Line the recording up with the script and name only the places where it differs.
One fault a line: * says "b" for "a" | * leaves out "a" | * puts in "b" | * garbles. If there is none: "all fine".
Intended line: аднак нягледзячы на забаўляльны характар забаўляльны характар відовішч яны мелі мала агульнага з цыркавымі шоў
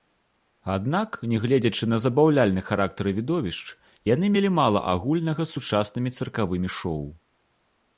* leaves out "забаўляльны характар"
* puts in "сучаснымі"